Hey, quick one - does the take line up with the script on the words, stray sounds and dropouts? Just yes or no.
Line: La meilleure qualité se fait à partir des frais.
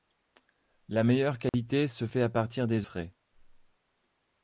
no